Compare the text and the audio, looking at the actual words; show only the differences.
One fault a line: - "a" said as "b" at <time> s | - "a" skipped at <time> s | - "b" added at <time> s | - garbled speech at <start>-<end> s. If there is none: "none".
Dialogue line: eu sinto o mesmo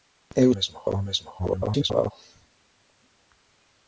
- "sinto" said as "mesmo" at 0.5 s
- garbled speech at 1.4-2.1 s